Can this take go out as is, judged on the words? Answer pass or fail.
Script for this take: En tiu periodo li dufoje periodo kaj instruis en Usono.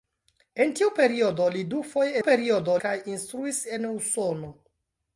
pass